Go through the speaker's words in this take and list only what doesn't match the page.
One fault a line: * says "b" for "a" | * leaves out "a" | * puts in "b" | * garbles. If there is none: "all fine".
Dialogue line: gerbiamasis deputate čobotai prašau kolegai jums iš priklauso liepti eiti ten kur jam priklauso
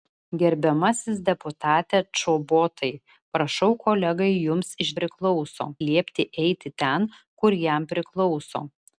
all fine